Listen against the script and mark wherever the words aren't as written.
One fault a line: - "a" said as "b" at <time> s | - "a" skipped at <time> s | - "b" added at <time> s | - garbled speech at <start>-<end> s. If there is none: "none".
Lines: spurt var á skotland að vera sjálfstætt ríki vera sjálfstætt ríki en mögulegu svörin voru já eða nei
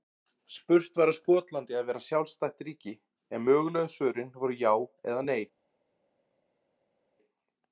- "vera sjálfstætt ríki" skipped at 2.9 s